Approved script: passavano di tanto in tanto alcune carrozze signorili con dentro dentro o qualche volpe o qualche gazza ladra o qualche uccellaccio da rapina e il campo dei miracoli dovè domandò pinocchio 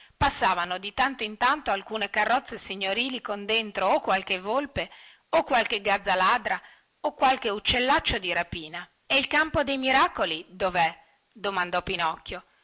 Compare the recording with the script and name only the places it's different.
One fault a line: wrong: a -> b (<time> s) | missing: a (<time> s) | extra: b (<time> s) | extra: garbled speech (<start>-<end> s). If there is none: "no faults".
missing: dentro (3.9 s)
wrong: da -> di (8.2 s)